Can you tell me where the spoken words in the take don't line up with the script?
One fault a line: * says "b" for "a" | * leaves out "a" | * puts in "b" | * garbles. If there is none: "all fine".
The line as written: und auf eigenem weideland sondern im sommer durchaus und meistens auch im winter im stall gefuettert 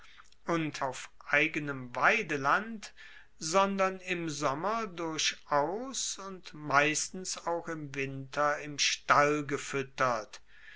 all fine